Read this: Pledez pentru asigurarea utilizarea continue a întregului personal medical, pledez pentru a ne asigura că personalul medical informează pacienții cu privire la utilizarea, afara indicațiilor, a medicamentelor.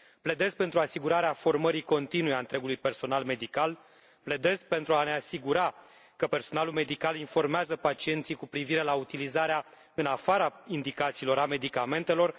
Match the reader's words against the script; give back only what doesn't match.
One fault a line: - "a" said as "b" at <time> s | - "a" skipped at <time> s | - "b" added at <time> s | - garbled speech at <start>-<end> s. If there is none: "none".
- "utilizarea" said as "formării" at 1.3 s
- "în" added at 9.9 s